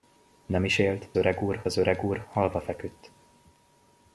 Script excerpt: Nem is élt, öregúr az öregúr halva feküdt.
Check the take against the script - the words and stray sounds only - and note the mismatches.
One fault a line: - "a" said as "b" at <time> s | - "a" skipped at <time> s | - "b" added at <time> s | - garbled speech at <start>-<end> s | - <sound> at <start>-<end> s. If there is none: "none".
none